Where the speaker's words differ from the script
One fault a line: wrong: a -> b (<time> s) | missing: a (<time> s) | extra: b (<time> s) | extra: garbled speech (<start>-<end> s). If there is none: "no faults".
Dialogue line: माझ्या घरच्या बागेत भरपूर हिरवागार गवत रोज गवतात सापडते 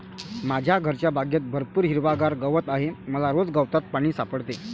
extra: आहे मला (2.7 s)
extra: पाणी (3.9 s)